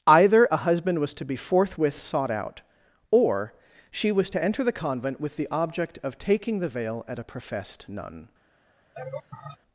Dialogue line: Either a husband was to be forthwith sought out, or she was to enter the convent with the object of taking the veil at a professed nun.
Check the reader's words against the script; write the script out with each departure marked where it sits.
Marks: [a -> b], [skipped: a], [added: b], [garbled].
Either a husband was to be forthwith sought out, or she was to enter the convent with the object of taking the veil at a professed nun.